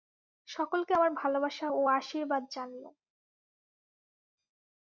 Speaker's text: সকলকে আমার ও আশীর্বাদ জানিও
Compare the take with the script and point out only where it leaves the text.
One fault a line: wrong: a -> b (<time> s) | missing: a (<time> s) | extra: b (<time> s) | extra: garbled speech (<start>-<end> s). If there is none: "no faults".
extra: ভালবাসা (1.1 s)